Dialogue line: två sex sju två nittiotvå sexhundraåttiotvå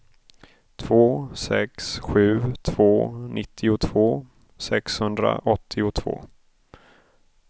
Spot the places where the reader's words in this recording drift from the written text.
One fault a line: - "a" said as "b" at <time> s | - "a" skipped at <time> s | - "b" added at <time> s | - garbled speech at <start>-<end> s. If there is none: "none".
none